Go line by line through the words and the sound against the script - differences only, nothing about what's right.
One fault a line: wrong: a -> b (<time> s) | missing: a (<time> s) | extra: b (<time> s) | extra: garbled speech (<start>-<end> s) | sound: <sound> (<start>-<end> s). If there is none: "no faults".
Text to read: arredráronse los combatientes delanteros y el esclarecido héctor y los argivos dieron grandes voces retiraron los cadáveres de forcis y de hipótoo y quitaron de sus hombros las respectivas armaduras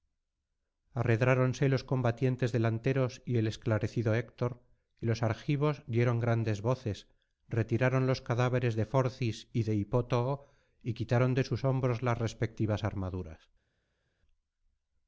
no faults